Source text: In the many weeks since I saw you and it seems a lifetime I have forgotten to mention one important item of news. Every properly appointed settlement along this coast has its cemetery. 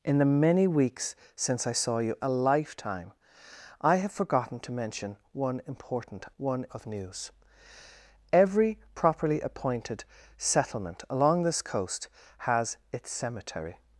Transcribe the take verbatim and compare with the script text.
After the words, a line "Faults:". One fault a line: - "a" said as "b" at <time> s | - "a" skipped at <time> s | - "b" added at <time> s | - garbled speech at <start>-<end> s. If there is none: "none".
In the many weeks since I saw you a lifetime I have forgotten to mention one important one of news. Every properly appointed settlement along this coast has its cemetery.
Faults:
- "and it seems" skipped at 2.2 s
- "item" said as "one" at 6.4 s